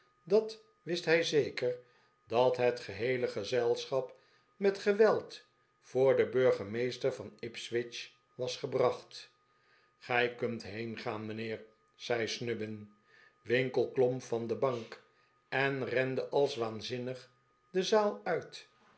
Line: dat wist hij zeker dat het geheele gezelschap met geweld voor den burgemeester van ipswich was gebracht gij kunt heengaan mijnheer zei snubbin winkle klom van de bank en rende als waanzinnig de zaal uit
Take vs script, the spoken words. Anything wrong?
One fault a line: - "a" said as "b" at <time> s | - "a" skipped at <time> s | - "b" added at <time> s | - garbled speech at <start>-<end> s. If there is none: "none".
none